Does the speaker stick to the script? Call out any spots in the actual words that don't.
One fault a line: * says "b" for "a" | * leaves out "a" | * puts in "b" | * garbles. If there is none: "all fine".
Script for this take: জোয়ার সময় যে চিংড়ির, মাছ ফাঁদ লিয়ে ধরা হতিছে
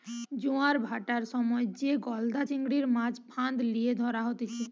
* puts in "ভাঁটার"
* puts in "গলদা"